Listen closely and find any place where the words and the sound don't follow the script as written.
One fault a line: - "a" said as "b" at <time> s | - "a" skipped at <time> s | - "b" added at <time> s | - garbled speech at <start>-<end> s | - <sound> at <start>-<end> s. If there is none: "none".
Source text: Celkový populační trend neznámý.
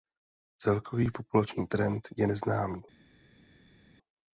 - "je" added at 2.2 s